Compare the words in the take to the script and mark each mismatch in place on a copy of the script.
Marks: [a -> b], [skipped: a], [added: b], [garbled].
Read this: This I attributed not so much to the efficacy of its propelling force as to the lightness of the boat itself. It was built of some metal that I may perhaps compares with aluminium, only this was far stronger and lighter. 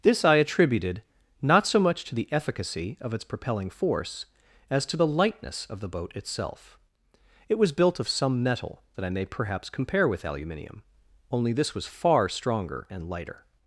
This I attributed not so much to the efficacy of its propelling force as to the lightness of the boat itself. It was built of some metal that I may perhaps [compares -> compare] with aluminium, only this was far stronger and lighter.